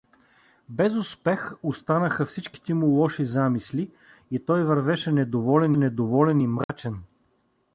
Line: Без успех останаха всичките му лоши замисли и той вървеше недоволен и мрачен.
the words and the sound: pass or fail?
fail